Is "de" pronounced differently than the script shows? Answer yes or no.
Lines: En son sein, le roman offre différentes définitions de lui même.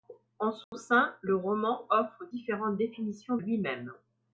yes